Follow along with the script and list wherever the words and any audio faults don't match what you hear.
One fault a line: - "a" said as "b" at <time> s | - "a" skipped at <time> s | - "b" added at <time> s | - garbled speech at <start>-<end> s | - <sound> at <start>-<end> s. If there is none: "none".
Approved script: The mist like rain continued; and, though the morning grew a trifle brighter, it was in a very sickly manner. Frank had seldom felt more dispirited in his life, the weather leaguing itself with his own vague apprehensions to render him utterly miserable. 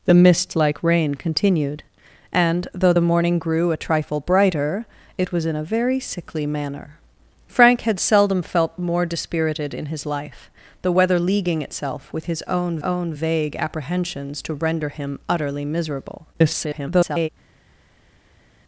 - "own" added at 12.8 s
- garbled speech at 16.3-17.3 s